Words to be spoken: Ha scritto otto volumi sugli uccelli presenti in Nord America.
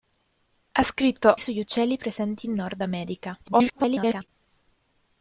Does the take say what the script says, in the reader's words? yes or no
no